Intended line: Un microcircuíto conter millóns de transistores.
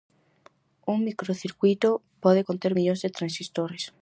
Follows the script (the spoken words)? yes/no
no